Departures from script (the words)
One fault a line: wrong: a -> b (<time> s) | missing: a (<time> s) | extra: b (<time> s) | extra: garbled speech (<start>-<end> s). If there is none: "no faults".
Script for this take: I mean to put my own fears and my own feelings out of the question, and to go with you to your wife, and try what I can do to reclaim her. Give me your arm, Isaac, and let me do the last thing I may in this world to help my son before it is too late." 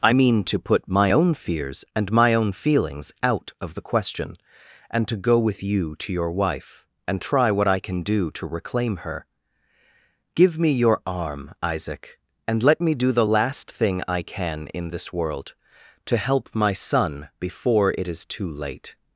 wrong: may -> can (14.2 s)